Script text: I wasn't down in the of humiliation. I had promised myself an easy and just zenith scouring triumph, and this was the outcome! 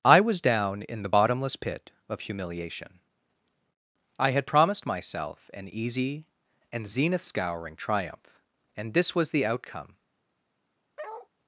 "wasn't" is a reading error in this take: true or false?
true